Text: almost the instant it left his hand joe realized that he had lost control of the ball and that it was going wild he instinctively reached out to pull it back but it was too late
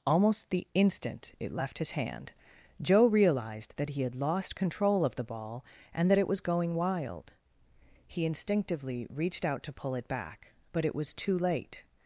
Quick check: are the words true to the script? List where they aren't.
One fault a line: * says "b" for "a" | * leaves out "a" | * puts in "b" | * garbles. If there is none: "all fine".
all fine